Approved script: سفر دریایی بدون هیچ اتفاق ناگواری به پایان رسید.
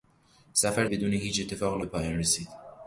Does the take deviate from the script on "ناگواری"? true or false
true